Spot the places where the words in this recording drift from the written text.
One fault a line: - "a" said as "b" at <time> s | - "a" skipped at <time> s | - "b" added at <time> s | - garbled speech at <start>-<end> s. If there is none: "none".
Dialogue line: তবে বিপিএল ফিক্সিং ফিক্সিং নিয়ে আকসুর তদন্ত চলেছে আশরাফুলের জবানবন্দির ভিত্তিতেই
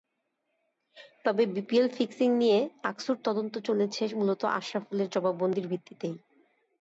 - "ফিক্সিং" skipped at 2.3 s
- "মূলত" added at 4.2 s